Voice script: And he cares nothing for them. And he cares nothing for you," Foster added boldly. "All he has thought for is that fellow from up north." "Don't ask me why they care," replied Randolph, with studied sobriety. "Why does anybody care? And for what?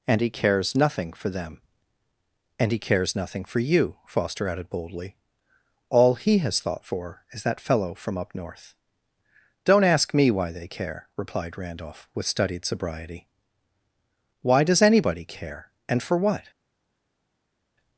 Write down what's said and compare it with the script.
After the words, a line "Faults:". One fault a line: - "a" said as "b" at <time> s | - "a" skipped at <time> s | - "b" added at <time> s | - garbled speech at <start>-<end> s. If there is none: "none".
And he cares nothing for them. And he cares nothing for you," Foster added boldly. "All he has thought for is that fellow from up north." "Don't ask me why they care," replied Randolph, with studied sobriety. "Why does anybody care? And for what?
Faults:
none